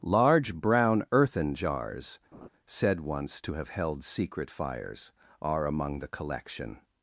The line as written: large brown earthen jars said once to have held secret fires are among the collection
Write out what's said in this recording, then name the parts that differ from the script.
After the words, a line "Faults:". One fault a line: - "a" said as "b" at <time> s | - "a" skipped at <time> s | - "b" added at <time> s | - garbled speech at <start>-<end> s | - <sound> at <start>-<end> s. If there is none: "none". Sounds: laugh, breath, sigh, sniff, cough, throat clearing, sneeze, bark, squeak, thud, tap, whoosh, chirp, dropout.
large brown earthen jars said once to have held secret fires are among the collection
Faults:
- laugh at 2.3-2.5 s